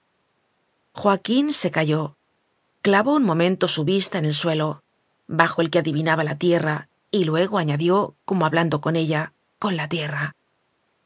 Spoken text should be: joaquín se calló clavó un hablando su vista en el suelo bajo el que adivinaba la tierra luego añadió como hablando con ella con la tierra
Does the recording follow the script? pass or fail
fail